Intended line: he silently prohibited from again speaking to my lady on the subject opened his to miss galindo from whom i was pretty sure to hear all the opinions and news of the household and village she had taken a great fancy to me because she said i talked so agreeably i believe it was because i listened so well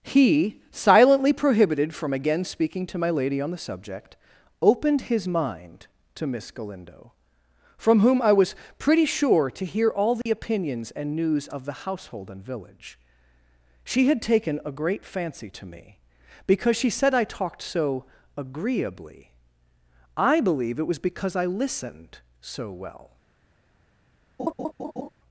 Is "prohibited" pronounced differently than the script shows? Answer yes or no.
no